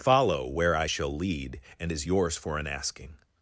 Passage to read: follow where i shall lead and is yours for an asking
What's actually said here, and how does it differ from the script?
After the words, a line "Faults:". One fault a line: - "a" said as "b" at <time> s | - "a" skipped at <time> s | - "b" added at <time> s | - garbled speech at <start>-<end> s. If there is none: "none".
follow where i shall lead and is yours for an asking
Faults:
none